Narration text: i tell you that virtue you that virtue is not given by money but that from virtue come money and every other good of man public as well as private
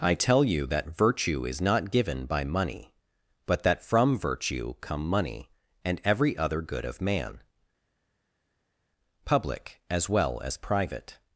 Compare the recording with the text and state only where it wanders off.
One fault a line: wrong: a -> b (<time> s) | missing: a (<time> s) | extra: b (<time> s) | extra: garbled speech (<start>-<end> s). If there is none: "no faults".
missing: you that virtue (1.4 s)